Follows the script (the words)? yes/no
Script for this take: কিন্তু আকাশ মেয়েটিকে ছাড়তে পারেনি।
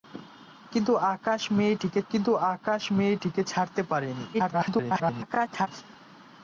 no